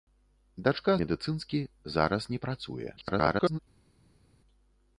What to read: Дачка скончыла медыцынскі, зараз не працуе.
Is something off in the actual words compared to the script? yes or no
yes